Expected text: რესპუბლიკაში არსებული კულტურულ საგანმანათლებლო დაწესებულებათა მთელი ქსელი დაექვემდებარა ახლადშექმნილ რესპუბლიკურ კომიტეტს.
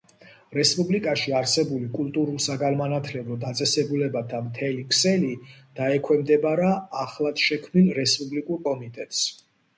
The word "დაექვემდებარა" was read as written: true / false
true